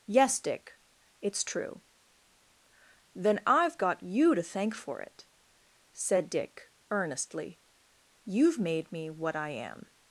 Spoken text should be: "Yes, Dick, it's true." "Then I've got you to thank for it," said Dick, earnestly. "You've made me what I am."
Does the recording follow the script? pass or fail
pass